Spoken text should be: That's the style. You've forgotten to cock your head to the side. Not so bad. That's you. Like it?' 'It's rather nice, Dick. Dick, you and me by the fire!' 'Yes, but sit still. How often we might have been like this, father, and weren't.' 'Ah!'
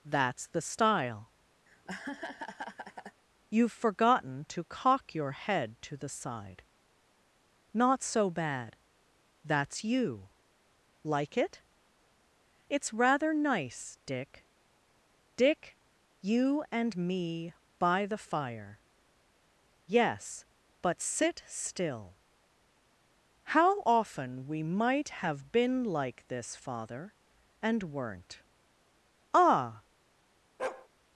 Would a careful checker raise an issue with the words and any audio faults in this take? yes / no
yes